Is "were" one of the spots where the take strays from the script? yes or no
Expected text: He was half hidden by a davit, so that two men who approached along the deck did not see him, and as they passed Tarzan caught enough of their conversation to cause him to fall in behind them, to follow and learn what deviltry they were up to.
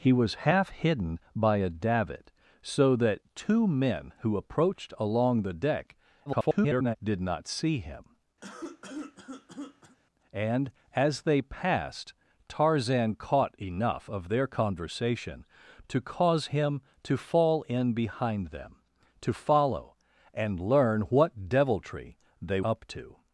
yes